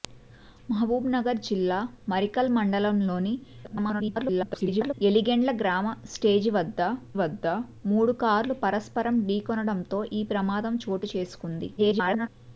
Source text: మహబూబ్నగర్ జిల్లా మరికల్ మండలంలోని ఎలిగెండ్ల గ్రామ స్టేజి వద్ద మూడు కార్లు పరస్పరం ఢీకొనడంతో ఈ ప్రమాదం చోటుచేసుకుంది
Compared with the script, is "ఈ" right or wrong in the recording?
right